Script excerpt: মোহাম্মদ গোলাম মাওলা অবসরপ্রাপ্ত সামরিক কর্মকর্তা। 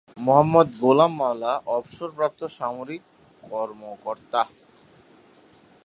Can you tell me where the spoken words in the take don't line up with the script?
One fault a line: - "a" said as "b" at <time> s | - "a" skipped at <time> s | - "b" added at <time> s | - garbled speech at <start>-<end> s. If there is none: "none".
none